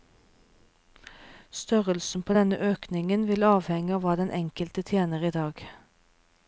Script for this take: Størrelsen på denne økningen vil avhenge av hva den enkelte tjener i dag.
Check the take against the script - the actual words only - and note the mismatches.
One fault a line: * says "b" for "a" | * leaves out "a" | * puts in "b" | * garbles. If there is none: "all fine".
all fine